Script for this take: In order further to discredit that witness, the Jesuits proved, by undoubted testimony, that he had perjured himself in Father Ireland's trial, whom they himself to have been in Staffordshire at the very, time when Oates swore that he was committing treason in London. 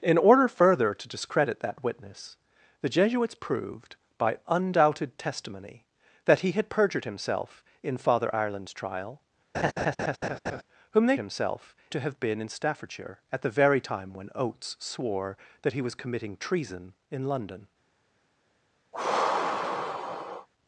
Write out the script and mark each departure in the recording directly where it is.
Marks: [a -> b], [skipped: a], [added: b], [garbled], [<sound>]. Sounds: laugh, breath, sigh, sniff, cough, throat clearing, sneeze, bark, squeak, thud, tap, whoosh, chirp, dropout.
In order further to discredit that witness, the Jesuits proved, by undoubted testimony, that he had perjured himself in Father Ireland's trial, [laugh] whom they himself to have been in Staffordshire at the very, time when Oates swore that he was committing treason in London. [sigh]